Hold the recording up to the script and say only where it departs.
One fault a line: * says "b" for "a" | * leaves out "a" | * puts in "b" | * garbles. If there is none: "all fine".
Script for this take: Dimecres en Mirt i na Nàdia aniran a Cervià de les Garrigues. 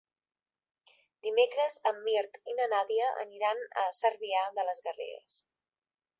all fine